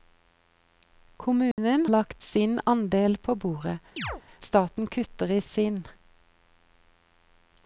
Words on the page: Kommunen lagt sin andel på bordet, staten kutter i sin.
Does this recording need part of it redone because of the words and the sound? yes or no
yes